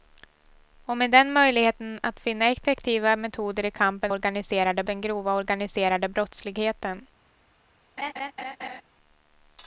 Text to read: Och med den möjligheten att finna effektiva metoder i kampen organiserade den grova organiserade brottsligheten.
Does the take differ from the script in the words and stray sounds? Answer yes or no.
yes